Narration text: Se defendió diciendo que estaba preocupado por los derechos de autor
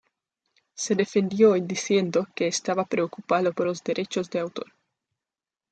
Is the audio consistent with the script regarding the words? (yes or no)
yes